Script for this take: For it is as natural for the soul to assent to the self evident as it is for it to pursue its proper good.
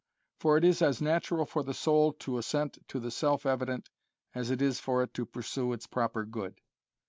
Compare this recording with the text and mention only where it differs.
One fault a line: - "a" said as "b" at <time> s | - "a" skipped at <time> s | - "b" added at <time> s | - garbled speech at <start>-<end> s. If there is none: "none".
none